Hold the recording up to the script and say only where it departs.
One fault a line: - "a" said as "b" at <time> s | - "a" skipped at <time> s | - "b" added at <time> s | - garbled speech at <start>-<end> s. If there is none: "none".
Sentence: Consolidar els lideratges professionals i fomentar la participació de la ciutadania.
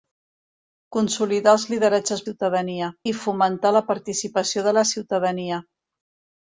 - "professionals" said as "ciutadania" at 2.3 s